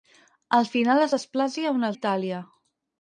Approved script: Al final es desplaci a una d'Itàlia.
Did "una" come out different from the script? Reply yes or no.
no